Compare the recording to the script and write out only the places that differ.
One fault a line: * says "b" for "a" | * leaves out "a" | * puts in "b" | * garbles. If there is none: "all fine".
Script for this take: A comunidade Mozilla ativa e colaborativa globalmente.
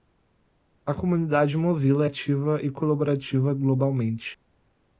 all fine